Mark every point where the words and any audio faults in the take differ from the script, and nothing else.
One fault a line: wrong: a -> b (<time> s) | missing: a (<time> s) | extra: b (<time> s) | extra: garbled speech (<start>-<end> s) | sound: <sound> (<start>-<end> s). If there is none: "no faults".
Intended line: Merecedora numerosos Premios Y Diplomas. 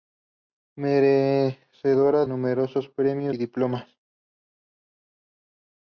no faults